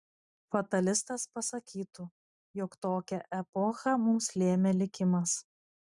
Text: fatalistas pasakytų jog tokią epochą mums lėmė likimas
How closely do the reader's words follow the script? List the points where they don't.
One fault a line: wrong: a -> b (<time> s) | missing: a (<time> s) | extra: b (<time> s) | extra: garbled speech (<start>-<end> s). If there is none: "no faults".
no faults